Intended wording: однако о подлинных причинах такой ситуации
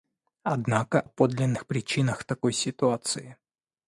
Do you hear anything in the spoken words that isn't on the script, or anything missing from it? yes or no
no